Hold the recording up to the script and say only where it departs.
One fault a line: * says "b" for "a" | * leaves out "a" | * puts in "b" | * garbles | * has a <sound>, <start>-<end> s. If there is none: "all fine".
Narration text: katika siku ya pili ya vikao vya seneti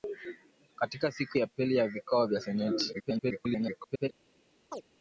* garbles
* has a chirp, 4.7-4.8 s